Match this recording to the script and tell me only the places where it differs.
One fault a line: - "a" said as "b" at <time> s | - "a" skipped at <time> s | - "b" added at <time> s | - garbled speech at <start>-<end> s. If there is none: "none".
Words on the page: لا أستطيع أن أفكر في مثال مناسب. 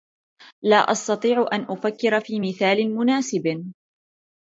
none